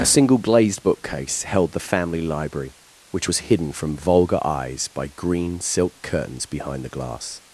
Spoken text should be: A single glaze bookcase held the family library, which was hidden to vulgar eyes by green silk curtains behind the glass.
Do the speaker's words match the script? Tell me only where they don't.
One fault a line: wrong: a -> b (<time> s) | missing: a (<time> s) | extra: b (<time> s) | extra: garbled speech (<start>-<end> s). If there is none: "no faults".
wrong: glaze -> glazed (0.4 s)
wrong: to -> from (3.7 s)